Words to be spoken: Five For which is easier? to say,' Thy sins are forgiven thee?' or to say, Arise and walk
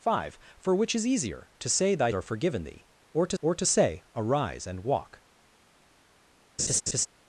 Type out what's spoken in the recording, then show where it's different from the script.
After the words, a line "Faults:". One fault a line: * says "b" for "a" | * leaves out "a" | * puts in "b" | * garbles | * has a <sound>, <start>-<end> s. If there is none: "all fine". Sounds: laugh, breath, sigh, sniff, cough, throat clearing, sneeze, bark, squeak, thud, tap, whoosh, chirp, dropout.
Five For which is easier? to say,' Thy are forgiven thee?' or to or to say, Arise and walk
Faults:
* leaves out "sins"
* puts in "or to"
* has a laugh, 6.6-7.1 s